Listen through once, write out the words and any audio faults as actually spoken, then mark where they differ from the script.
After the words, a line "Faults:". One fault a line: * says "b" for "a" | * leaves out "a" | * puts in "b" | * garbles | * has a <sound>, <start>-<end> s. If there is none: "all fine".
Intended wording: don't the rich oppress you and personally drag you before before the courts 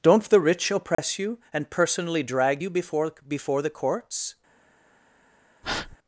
don't the rich oppress you and personally drag you before before the courts
Faults:
* has a dropout, 0.9-1.0 s
* has a breath, 5.6-6.0 s